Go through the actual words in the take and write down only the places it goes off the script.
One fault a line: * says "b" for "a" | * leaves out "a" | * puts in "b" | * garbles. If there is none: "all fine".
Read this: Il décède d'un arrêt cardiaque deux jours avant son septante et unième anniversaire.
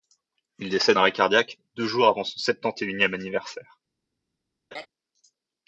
* leaves out "d'un"